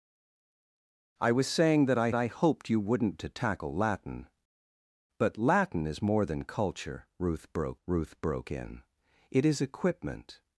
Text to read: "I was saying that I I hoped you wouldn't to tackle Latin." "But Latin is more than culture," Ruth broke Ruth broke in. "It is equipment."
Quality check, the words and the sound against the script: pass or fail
pass